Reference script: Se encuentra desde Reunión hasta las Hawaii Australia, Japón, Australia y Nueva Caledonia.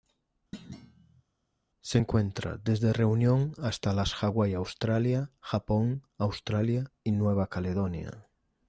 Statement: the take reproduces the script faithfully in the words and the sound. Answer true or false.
false